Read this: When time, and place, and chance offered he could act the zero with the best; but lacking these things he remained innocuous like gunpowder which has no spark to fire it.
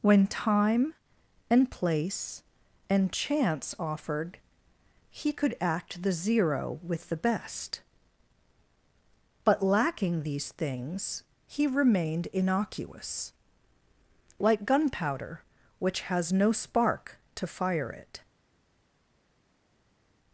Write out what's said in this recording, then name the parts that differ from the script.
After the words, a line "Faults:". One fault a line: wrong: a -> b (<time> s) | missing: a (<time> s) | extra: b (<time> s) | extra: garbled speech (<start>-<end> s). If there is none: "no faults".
When time, and place, and chance offered he could act the zero with the best; but lacking these things he remained innocuous like gunpowder which has no spark to fire it.
Faults:
no faults